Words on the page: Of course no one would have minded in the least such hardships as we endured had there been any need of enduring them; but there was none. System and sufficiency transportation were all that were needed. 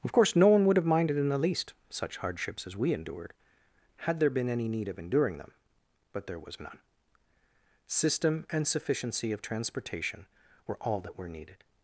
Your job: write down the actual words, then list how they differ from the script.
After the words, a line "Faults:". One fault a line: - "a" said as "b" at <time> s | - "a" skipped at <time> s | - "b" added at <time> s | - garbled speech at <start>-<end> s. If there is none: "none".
Of course no one would have minded in the least such hardships as we endured had there been any need of enduring them; but there was none. System and sufficiency of transportation were all that were needed.
Faults:
- "of" added at 9.3 s